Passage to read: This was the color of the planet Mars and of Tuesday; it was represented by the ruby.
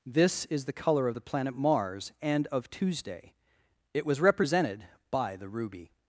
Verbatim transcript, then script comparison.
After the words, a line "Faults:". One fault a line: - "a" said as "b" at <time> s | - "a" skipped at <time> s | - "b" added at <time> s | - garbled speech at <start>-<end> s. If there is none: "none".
This is the color of the planet Mars and of Tuesday; it was represented by the ruby.
Faults:
- "was" said as "is" at 0.5 s